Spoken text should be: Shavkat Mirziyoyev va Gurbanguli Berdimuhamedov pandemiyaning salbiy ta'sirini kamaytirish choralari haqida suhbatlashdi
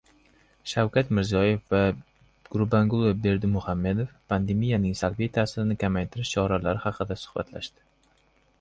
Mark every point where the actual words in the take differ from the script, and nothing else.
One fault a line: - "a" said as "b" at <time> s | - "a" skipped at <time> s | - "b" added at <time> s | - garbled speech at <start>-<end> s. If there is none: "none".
none